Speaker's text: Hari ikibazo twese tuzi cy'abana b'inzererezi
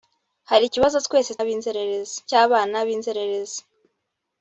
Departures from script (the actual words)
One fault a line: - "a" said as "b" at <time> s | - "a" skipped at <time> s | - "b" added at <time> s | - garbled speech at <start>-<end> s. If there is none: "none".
- "tuzi" said as "b'inzererezi" at 1.4 s